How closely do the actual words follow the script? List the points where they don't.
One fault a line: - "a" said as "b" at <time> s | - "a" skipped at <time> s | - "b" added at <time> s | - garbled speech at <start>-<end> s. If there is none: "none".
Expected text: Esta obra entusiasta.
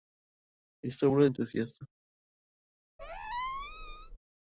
none